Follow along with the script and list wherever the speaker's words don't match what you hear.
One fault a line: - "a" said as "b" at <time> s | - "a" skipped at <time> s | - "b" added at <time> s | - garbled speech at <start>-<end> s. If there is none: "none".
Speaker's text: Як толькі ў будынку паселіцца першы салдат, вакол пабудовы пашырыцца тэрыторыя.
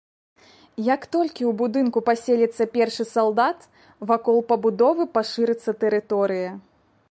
none